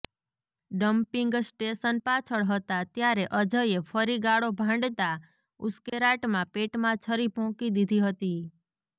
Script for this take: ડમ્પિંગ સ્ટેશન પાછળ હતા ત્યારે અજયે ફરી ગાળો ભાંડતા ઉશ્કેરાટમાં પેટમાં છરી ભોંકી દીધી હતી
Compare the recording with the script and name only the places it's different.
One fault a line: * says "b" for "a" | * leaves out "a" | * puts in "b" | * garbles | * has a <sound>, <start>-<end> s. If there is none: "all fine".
* has a dropout, 5.9-5.9 s